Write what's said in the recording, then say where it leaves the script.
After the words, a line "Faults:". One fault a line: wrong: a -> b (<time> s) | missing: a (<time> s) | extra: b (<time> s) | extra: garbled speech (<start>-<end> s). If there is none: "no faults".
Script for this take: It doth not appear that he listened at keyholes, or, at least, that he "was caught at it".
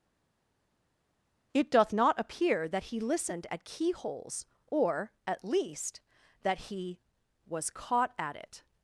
It doth not appear that he listened at keyholes, or, at least, that he "was caught at it".
Faults:
no faults